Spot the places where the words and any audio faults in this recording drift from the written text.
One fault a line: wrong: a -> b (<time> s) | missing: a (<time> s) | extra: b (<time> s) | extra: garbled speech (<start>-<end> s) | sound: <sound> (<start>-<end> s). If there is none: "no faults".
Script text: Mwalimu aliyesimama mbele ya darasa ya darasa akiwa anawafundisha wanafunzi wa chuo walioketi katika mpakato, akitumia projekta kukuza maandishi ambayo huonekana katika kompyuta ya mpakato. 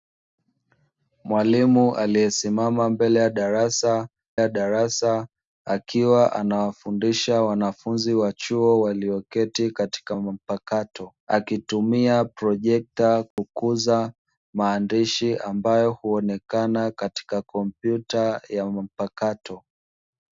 sound: dropout (13.3-13.4 s)